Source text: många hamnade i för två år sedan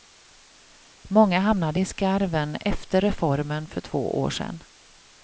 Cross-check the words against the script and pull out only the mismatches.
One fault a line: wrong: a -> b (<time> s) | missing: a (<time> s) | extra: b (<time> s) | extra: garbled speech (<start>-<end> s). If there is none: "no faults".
extra: skarven efter reformen (1.9 s)